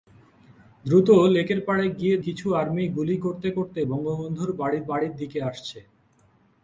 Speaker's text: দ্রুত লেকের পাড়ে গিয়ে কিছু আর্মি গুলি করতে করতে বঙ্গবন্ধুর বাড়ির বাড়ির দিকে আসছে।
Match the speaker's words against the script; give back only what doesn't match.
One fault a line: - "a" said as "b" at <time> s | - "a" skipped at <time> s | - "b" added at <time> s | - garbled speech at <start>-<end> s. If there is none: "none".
none